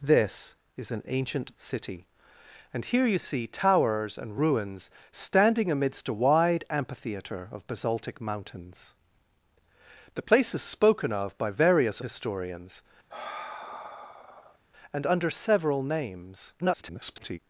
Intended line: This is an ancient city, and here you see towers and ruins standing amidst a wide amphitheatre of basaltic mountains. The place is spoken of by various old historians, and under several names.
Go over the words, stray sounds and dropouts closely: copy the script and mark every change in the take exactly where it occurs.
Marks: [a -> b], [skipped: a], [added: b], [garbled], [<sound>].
This is an ancient city, and here you see towers and ruins standing amidst a wide amphitheatre of basaltic mountains. The place is spoken of by various [skipped: old] historians, [sigh] and under several names. [garbled]